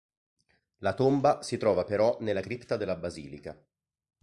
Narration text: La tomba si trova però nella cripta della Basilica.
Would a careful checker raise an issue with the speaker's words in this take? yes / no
no